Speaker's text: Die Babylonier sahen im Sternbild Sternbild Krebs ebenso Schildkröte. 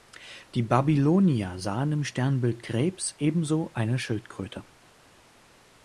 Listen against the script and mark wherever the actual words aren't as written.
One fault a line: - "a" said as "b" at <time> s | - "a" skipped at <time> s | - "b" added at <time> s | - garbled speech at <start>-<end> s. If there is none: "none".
- "Sternbild" skipped at 2.6 s
- "eine" added at 3.7 s